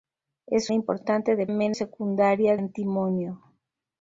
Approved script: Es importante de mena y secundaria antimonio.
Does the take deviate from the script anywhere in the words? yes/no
no